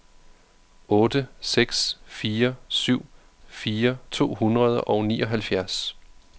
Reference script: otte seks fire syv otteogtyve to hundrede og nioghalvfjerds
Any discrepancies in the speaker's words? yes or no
yes